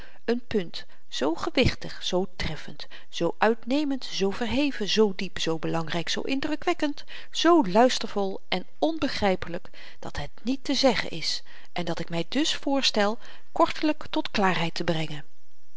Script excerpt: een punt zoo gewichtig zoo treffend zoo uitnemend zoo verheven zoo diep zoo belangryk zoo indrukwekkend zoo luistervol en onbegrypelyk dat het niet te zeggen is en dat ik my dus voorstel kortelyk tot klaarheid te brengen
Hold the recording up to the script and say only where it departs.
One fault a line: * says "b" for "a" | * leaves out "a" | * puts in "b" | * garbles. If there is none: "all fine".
all fine